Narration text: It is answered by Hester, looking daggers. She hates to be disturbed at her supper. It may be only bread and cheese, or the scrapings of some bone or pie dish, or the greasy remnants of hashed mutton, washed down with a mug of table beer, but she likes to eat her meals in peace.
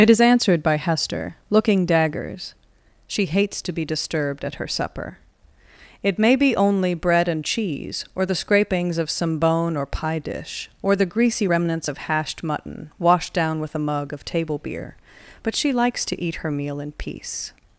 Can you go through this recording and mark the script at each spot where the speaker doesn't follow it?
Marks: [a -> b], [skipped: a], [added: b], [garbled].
It is answered by Hester, looking daggers. She hates to be disturbed at her supper. It may be only bread and cheese, or the scrapings of some bone or pie dish, or the greasy remnants of hashed mutton, washed down with a mug of table beer, but she likes to eat her [meals -> meal] in peace.